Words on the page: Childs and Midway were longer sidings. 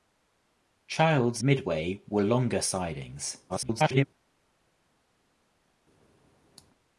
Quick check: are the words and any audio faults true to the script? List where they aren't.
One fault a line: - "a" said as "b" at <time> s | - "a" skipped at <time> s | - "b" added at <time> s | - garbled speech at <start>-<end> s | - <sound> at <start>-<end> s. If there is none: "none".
- "and" skipped at 1.4 s
- garbled speech at 3.5-4.1 s